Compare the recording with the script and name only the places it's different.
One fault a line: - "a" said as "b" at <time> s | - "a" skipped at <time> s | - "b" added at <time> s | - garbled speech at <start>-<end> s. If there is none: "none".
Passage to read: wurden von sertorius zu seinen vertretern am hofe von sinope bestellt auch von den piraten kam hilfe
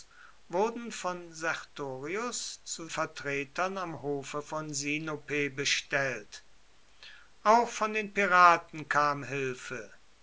- "seinen" skipped at 2.9 s